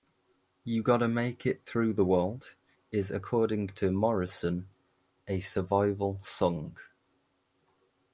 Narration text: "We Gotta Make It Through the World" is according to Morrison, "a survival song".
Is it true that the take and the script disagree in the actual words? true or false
true